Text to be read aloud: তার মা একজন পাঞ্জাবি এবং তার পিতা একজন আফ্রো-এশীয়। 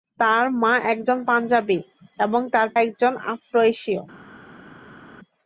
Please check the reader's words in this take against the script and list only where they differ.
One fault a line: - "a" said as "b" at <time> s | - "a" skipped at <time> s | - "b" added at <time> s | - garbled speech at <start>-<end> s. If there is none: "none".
- "পিতা" skipped at 2.7 s